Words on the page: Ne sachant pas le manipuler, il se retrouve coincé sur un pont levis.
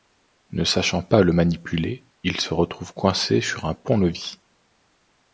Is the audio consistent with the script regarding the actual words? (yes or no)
yes